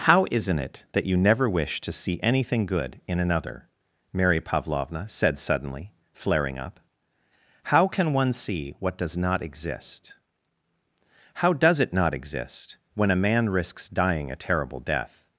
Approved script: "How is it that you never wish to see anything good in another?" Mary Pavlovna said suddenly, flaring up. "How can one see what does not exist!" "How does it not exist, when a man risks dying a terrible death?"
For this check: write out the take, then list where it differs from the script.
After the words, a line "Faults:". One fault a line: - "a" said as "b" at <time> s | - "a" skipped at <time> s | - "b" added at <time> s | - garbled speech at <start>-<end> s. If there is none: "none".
"How isn't it that you never wish to see anything good in another?" Mary Pavlovna said suddenly, flaring up. "How can one see what does not exist!" "How does it not exist, when a man risks dying a terrible death?"
Faults:
- "is" said as "isn't" at 0.3 s